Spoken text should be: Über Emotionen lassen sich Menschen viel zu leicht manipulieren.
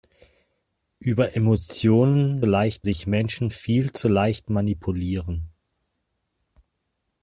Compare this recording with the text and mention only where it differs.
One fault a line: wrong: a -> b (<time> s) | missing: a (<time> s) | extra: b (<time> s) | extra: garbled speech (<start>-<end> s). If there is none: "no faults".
wrong: lassen -> leicht (2.4 s)